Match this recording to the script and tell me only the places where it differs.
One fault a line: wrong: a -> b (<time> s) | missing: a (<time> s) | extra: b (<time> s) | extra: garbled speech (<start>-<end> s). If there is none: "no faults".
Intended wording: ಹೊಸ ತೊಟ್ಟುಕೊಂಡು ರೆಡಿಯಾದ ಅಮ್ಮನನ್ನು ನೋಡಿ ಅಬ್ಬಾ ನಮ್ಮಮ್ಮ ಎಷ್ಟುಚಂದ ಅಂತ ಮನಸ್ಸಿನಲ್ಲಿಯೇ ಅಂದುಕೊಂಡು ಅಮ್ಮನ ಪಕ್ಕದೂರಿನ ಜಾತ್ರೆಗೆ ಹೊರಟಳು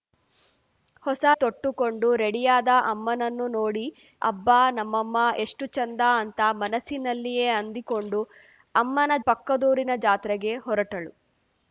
no faults